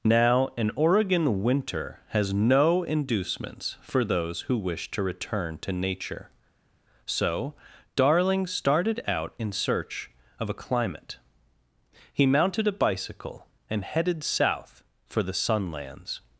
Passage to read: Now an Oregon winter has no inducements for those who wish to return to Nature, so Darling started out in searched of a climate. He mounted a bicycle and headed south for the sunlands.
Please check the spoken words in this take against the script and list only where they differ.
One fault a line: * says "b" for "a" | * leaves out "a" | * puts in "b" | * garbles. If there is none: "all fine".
* says "search" for "searched"